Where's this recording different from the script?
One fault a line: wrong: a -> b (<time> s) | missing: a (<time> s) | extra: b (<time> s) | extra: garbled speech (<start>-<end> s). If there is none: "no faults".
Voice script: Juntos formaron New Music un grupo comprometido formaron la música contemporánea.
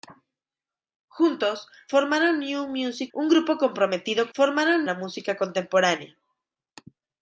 no faults